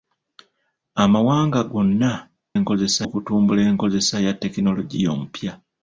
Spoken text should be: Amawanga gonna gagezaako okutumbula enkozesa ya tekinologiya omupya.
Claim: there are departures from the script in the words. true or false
true